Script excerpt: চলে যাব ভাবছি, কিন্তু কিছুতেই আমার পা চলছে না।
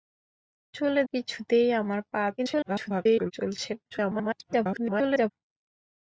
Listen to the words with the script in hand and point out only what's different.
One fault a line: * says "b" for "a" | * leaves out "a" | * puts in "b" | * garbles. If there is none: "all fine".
* leaves out "যাব ভাবছি কিন্তু"
* garbles
* garbles